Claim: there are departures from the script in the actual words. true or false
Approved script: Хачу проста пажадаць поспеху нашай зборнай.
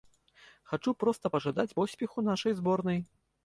false